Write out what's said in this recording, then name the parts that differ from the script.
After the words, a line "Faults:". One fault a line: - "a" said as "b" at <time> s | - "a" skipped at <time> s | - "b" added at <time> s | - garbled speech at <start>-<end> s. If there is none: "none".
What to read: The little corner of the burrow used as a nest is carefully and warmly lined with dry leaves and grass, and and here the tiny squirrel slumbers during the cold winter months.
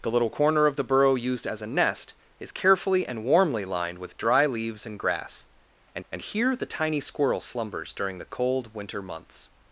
The little corner of the burrow used as a nest is carefully and warmly lined with dry leaves and grass, and and here the tiny squirrel slumbers during the cold winter months.
Faults:
none